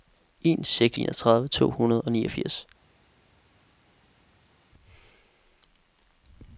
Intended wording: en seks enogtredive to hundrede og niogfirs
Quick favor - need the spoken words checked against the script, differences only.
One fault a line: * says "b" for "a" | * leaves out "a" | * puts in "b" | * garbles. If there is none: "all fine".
all fine